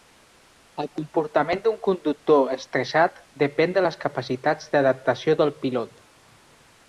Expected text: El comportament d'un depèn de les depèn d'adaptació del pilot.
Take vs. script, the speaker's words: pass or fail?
fail